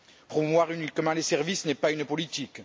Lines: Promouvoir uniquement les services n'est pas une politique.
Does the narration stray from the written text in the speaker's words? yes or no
no